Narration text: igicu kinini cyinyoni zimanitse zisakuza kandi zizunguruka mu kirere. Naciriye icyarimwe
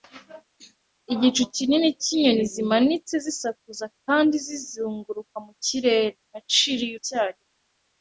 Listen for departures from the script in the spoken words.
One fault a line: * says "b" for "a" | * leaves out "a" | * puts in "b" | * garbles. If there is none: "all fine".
all fine